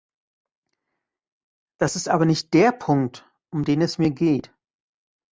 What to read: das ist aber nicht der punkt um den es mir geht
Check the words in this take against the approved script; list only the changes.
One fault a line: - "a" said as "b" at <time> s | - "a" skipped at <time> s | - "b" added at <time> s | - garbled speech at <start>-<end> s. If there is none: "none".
none